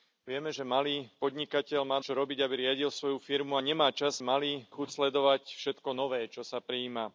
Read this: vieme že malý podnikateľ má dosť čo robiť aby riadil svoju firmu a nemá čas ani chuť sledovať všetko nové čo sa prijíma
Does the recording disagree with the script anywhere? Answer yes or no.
yes